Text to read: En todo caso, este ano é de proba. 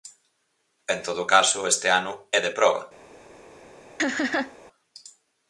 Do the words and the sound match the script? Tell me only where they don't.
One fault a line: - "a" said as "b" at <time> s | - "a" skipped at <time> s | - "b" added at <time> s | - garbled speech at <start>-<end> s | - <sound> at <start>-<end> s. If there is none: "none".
- laugh at 4.0-4.6 s